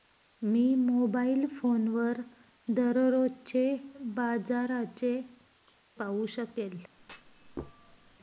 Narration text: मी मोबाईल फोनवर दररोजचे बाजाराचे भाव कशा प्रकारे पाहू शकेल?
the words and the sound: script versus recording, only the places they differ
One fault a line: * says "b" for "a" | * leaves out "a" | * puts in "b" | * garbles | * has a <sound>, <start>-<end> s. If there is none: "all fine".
* leaves out "भाव कशा प्रकारे"
* has a thud, 7.0-8.2 s